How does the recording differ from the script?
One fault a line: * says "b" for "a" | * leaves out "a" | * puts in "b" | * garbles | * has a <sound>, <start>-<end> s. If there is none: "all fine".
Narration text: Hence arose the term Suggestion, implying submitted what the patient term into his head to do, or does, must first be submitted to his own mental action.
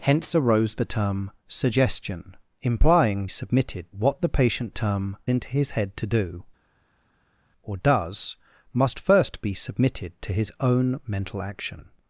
all fine